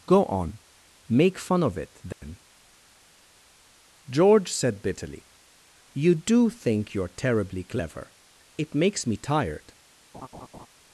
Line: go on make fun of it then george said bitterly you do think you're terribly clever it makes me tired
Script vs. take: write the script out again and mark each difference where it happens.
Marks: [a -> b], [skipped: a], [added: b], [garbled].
go on make fun of it then george said bitterly you do think you're terribly clever it makes me tired